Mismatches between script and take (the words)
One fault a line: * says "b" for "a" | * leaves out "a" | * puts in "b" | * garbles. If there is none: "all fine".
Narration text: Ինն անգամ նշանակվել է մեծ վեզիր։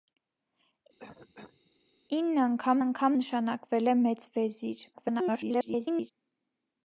* puts in "անգամ"
* garbles